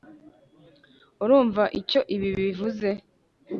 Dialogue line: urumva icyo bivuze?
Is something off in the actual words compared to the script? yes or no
yes